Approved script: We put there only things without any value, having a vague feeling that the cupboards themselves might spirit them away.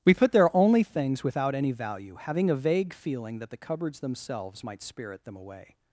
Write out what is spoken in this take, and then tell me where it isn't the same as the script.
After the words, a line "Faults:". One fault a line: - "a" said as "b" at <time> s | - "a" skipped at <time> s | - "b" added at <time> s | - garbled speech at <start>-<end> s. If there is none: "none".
We put there only things without any value, having a vague feeling that the cupboards themselves might spirit them away.
Faults:
none